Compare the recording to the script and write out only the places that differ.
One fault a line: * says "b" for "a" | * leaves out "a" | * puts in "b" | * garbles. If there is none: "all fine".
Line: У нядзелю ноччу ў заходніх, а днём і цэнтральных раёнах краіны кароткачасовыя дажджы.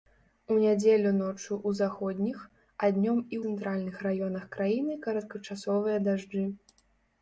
all fine